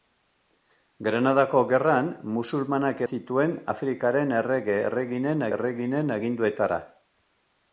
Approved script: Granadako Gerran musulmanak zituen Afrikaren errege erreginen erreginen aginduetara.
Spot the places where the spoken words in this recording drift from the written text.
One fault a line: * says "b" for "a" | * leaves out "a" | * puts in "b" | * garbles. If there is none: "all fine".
all fine